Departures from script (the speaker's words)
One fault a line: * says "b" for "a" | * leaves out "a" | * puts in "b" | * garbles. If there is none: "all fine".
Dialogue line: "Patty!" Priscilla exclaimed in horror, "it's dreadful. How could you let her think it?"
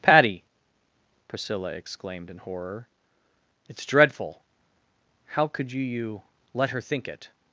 * puts in "you"